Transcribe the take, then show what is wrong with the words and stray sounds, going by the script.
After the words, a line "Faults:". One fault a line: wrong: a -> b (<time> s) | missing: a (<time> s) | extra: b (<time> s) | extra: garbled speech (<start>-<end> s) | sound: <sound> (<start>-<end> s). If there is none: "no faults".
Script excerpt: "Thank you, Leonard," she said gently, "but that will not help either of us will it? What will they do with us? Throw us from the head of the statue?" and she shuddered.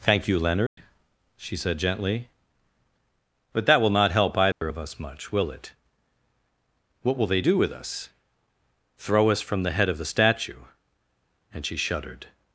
"Thank you, Leonard," she said gently, "but that will not help either of us much, will it? What will they do with us? Throw us from the head of the statue?" and she shuddered.
Faults:
sound: dropout (0.7-0.8 s)
sound: dropout (4.5-4.6 s)
extra: much (5.0 s)